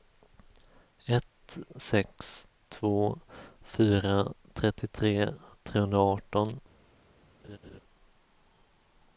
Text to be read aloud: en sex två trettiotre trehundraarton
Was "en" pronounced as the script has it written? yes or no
no